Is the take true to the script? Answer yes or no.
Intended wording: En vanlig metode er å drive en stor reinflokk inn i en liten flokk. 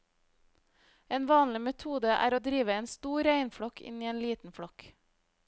yes